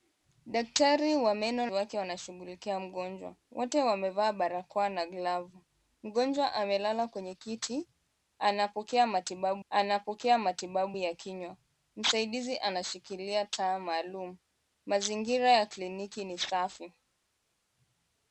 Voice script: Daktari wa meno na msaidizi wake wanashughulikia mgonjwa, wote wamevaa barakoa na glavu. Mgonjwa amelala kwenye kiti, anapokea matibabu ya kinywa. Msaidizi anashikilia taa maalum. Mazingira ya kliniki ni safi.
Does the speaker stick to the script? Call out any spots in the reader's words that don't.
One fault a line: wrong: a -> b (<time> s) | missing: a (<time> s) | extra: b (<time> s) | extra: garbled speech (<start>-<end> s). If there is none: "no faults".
missing: na msaidizi (1.6 s)
extra: anapokea matibabu (9.7 s)